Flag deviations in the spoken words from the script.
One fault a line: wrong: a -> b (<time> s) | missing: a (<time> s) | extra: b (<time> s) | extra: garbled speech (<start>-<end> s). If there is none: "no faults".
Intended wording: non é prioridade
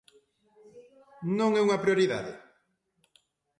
extra: unha (1.7 s)